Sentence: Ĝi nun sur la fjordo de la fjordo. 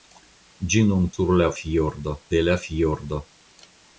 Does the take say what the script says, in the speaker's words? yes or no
yes